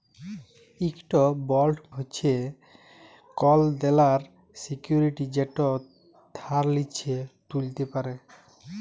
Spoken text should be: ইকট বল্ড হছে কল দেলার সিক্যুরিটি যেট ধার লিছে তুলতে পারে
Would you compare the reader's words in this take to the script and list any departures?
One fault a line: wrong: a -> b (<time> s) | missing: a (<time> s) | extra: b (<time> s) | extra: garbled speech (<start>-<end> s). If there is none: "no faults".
no faults